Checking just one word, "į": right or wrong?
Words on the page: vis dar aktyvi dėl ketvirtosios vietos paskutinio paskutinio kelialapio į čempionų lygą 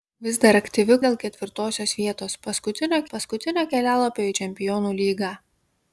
right